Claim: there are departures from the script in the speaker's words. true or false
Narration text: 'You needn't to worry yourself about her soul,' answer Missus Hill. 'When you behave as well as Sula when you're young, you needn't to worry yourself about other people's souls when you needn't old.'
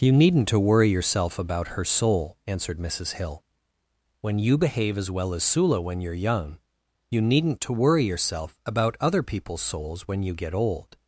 true